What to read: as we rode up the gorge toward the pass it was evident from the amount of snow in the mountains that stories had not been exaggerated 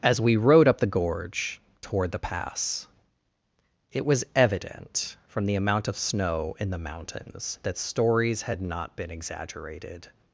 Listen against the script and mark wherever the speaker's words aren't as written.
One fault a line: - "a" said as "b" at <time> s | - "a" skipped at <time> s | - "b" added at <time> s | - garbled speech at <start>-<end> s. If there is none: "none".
none